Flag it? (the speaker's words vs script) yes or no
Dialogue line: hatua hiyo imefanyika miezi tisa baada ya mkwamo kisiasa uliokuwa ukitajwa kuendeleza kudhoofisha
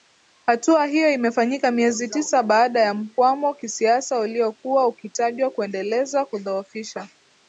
no